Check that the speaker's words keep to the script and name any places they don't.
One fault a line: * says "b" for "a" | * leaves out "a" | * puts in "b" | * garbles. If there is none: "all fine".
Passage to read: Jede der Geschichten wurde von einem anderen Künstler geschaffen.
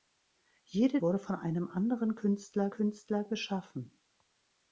* leaves out "der Geschichten"
* puts in "Künstler"